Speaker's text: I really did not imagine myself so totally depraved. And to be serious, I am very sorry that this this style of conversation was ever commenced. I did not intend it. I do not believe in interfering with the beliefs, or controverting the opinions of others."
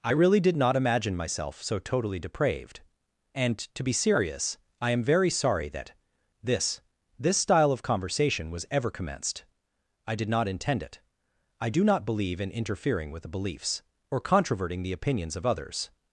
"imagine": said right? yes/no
yes